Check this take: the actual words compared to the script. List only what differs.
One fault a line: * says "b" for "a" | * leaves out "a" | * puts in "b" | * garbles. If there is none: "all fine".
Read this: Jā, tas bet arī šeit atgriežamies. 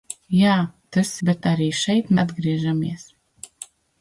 all fine